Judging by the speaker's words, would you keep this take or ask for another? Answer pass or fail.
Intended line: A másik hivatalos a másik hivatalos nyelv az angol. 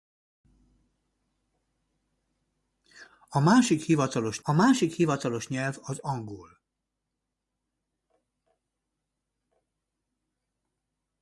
pass